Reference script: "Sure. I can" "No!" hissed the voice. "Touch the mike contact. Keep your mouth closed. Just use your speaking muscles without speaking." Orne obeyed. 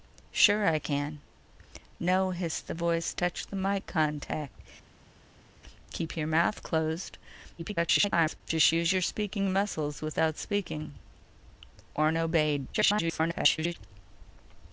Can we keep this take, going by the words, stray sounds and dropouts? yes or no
no